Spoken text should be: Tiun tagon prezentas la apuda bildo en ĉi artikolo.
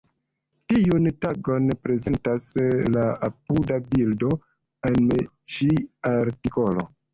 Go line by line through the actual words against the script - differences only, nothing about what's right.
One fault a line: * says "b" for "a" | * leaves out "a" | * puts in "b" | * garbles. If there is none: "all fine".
all fine